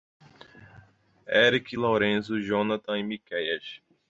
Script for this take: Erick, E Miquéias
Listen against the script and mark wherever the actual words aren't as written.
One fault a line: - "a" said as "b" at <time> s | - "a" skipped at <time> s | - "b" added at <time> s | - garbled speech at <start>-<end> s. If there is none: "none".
- "Lorenzo Jonathan" added at 1.7 s